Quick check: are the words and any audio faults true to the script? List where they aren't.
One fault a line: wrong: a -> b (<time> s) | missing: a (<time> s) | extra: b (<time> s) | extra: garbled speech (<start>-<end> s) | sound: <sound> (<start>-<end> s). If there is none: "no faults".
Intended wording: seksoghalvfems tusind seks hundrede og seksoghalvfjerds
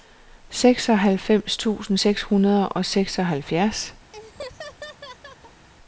sound: laugh (4.1-5.7 s)